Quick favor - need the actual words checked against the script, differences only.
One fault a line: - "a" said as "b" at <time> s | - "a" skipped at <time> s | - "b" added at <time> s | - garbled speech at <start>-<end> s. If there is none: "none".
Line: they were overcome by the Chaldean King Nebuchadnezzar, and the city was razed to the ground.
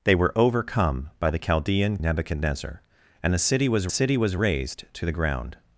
- "King" skipped at 2.0 s
- "city was" added at 3.9 s